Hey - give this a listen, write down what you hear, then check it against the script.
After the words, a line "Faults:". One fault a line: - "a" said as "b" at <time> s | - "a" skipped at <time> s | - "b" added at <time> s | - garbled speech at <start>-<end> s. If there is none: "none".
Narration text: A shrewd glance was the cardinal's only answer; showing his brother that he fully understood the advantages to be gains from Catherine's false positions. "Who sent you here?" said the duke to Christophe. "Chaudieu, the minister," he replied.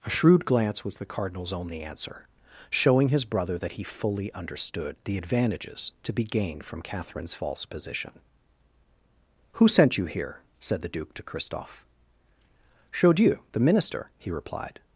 A shrewd glance was the cardinal's only answer; showing his brother that he fully understood the advantages to be gained from Catherine's false position. "Who sent you here?" said the duke to Christophe. "Chaudieu, the minister," he replied.
Faults:
- "gains" said as "gained" at 6.2 s
- "positions" said as "position" at 7.6 s